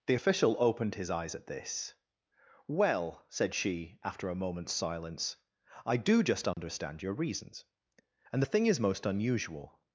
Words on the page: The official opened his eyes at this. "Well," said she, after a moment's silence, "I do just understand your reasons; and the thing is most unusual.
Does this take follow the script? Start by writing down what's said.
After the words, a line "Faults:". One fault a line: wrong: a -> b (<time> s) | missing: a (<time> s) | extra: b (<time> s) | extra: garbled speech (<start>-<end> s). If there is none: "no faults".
The official opened his eyes at this. "Well," said she, after a moment's silence, "I do just understand your reasons; and the thing is most unusual.
Faults:
no faults